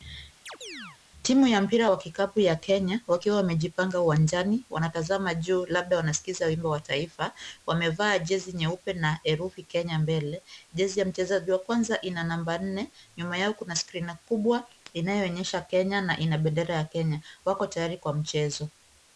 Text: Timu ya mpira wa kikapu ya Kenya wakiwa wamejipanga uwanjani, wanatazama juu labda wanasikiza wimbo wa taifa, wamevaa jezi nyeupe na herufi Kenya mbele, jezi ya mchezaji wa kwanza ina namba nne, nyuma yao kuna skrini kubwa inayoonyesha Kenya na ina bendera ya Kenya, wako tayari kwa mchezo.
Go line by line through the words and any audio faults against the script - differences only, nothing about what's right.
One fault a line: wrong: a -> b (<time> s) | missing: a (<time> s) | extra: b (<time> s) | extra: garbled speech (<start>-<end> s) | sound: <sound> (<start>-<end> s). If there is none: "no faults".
sound: chirp (0.5-1.0 s)